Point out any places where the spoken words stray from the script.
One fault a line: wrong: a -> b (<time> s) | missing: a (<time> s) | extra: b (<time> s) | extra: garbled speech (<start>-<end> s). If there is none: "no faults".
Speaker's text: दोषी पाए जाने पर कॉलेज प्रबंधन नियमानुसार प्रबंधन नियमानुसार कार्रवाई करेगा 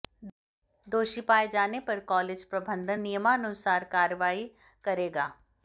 missing: प्रबंधन नियमानुसार (3.8 s)